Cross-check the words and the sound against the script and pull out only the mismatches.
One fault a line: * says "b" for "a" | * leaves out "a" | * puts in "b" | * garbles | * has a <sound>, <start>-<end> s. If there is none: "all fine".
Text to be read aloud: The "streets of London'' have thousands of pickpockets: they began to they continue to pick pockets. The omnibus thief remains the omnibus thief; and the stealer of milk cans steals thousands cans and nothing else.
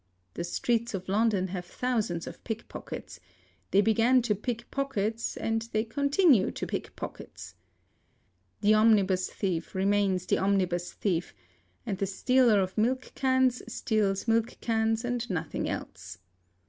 * puts in "pick pockets and"
* says "milk" for "thousands"